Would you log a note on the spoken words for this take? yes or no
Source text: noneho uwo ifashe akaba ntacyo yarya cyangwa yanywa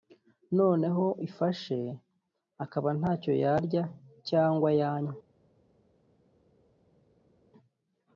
yes